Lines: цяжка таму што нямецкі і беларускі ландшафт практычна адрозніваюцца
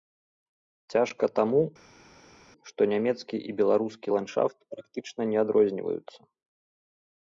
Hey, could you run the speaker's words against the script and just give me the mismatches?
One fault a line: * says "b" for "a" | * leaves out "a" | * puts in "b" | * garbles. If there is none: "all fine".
* puts in "не"